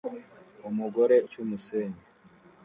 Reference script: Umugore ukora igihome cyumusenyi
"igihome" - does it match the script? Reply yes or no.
no